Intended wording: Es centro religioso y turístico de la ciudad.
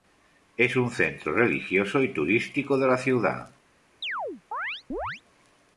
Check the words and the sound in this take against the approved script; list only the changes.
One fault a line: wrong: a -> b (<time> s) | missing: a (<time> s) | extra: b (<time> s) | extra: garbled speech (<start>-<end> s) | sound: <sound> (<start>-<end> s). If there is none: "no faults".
extra: un (0.8 s)
sound: chirp (4.0-5.2 s)